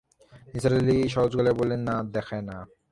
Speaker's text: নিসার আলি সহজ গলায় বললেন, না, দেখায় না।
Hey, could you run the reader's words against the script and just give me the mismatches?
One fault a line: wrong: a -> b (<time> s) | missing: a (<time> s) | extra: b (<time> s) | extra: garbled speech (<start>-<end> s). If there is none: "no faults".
no faults